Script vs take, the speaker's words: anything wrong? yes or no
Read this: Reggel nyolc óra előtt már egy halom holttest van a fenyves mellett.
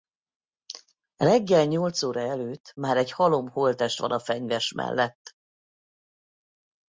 no